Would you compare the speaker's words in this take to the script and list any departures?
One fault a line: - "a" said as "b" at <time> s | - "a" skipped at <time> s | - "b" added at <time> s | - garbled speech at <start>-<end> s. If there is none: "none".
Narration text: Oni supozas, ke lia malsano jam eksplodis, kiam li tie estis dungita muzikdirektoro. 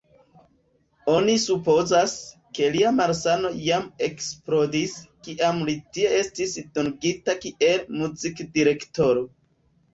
- "kiel" added at 7.5 s